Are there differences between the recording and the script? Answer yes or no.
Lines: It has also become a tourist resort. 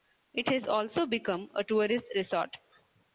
no